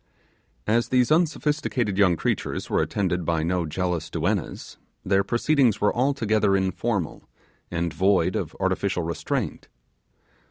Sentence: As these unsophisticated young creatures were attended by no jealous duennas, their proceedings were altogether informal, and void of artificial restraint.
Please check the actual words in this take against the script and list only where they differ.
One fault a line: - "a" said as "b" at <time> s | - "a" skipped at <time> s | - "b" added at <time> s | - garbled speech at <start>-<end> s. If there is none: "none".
none